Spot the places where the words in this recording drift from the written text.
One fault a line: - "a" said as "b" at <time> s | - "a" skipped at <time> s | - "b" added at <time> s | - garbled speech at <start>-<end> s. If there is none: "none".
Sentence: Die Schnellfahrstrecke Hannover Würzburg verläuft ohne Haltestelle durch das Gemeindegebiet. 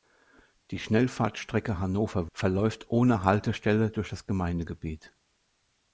- "Würzburg" skipped at 2.3 s